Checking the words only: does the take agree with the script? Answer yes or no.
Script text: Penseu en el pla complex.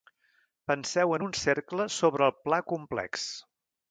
no